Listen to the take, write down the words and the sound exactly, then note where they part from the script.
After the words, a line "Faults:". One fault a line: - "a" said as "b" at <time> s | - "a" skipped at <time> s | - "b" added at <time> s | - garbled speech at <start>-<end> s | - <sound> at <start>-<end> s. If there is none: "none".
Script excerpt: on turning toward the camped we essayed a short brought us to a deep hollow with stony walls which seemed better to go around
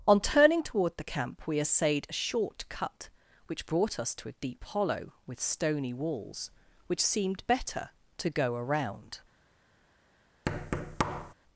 on turning toward the camp we essayed a short cut which brought us to a deep hollow with stony walls which seemed better to go around
Faults:
- "camped" said as "camp" at 1.0 s
- "cut which" added at 2.7 s
- thud at 10.5-11.3 s